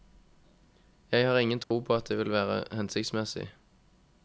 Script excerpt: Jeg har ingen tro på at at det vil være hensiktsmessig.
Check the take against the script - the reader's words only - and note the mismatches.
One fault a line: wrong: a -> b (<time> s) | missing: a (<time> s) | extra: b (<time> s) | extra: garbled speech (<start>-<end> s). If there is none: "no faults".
missing: at (2.1 s)